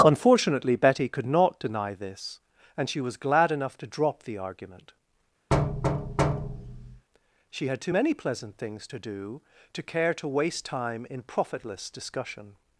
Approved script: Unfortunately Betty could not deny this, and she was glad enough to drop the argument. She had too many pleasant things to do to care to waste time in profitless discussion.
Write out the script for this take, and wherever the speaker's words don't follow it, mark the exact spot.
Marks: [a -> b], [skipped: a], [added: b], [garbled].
Unfortunately Betty could not deny this, and she was glad enough to drop the argument. She had too many pleasant things to do to care to waste time in profitless discussion.